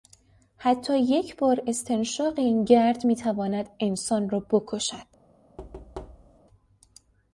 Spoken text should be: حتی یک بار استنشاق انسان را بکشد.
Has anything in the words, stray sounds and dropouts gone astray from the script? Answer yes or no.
yes